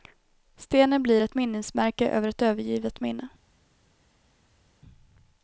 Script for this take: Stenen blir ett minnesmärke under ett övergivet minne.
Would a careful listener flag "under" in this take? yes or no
yes